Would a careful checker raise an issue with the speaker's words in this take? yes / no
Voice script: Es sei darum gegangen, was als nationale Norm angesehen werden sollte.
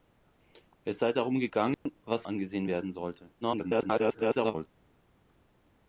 yes